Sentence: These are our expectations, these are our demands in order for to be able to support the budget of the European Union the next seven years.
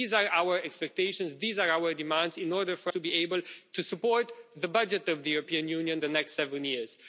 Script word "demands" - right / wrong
right